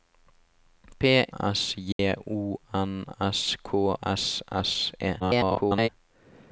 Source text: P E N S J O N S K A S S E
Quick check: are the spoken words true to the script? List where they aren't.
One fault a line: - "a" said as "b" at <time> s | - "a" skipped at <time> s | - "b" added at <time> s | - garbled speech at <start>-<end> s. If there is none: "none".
- "E N" skipped at 1.0 s
- "A" skipped at 4.0 s
- garbled speech at 5.2-5.9 s